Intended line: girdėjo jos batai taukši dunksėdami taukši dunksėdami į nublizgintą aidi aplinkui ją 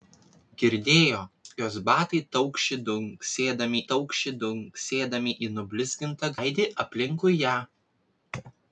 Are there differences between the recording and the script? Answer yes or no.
no